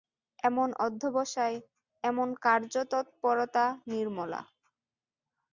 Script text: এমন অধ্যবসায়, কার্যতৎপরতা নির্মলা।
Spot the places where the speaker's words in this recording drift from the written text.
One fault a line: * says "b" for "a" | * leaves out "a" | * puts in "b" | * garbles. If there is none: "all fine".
* puts in "এমন"